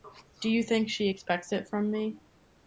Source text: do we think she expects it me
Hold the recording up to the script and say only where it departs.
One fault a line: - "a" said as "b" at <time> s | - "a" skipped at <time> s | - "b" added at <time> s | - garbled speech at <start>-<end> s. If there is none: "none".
- "we" said as "you" at 0.5 s
- "from" added at 1.7 s